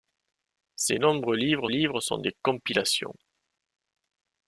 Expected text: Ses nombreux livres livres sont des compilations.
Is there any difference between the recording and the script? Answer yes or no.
no